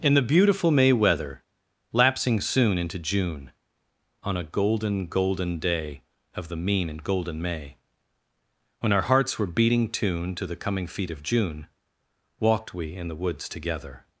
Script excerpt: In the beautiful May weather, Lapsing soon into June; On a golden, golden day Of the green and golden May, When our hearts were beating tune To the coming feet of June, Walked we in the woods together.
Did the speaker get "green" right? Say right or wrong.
wrong